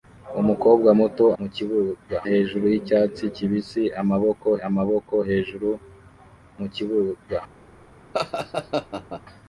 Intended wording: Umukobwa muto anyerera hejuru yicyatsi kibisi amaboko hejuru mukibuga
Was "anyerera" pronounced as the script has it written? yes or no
no